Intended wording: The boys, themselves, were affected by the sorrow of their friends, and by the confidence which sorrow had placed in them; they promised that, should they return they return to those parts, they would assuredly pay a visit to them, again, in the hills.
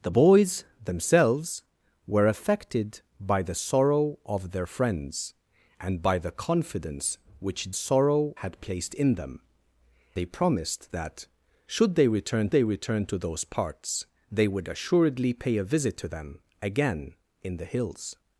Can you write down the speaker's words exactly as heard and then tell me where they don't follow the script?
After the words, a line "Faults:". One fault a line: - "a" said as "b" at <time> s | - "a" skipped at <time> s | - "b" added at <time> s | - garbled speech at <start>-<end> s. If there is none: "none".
The boys, themselves, were affected by the sorrow of their friends, and by the confidence which sorrow had placed in them; they promised that, should they return they return to those parts, they would assuredly pay a visit to them, again, in the hills.
Faults:
none